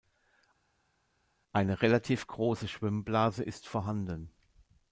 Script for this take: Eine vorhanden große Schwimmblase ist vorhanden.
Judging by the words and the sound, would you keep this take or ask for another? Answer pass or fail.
fail